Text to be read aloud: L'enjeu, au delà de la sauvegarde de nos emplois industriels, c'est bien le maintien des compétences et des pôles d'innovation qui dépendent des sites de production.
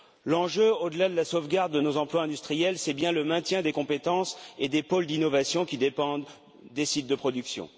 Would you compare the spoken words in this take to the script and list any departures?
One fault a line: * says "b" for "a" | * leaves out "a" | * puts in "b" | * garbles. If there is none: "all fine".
all fine